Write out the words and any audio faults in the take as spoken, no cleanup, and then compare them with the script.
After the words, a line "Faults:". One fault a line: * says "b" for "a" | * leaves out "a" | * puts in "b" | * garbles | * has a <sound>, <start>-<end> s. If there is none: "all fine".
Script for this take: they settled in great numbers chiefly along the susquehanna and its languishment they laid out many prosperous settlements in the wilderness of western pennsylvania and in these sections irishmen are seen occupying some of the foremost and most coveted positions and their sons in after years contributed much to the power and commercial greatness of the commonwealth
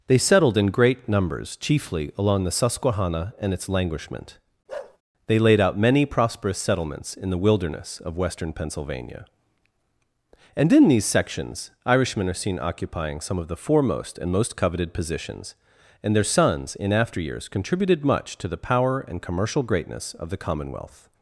they settled in great numbers chiefly along the susquehanna and its languishment they laid out many prosperous settlements in the wilderness of western pennsylvania and in these sections irishmen are seen occupying some of the foremost and most coveted positions and their sons in after years contributed much to the power and commercial greatness of the commonwealth
Faults:
* has a bark, 4.7-5.0 s